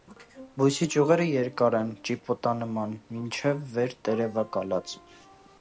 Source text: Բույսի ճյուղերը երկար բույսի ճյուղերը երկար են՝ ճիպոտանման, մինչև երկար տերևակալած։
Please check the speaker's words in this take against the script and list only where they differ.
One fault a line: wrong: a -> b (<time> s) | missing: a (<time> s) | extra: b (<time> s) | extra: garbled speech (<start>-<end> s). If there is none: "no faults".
missing: բույսի ճյուղերը երկար (1.8 s)
wrong: երկար -> վեր (3.8 s)